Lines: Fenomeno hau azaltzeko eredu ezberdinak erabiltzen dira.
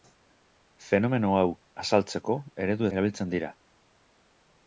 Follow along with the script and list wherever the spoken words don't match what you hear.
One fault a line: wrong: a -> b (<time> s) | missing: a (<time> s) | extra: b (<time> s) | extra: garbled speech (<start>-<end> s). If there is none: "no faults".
missing: ezberdinak (2.9 s)